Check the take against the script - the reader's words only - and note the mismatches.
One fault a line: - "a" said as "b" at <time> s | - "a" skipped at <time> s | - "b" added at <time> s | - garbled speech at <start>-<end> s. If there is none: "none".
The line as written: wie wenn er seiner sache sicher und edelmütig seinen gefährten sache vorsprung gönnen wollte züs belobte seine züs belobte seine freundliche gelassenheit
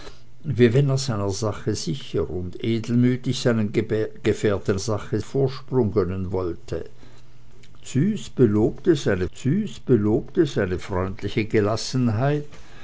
none